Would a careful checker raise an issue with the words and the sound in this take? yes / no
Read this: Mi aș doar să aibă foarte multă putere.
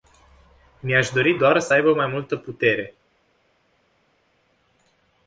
yes